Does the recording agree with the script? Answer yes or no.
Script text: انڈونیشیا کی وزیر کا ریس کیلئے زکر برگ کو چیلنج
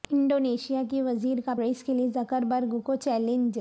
yes